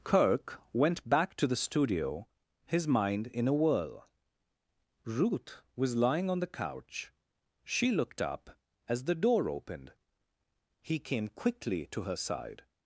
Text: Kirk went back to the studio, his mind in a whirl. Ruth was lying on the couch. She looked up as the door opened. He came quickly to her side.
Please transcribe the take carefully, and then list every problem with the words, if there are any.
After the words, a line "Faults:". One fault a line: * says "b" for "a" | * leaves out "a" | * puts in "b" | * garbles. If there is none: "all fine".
Kirk went back to the studio, his mind in a whirl. Ruth was lying on the couch. She looked up as the door opened. He came quickly to her side.
Faults:
all fine